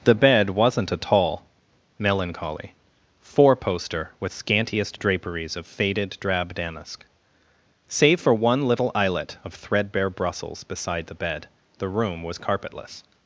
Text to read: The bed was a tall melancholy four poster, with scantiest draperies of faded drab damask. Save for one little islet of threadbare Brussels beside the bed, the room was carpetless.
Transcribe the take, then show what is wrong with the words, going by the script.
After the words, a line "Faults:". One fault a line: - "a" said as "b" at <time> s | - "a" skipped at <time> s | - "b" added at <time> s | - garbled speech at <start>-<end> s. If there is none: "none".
The bed wasn't a tall melancholy four poster, with scantiest draperies of faded drab damask. Save for one little islet of threadbare Brussels beside the bed, the room was carpetless.
Faults:
- "was" said as "wasn't" at 0.5 s